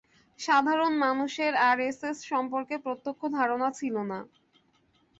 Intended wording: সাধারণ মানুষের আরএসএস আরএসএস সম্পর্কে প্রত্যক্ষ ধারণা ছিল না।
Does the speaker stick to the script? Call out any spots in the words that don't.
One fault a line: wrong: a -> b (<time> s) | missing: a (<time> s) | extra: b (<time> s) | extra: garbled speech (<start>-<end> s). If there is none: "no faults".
missing: আরএসএস (2.2 s)